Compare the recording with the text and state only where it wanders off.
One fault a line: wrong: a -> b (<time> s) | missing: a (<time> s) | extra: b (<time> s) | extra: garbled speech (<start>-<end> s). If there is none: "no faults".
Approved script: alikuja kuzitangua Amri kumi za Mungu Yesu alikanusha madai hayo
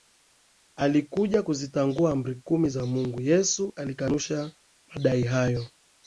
no faults